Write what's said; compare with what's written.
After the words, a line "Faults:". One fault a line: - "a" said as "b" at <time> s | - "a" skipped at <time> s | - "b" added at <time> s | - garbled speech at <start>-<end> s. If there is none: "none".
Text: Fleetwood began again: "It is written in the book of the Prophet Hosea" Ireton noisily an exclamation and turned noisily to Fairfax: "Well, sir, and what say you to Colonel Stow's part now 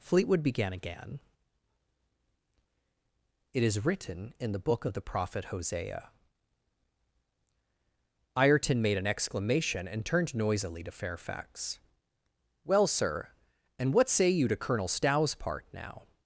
Fleetwood began again: "It is written in the book of the Prophet Hosea" Ireton made an exclamation and turned noisily to Fairfax: "Well, sir, and what say you to Colonel Stow's part now
Faults:
- "noisily" said as "made" at 8.8 s